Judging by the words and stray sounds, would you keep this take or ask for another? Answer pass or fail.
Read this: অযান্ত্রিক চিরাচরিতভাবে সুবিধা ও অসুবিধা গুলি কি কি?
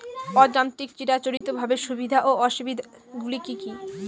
fail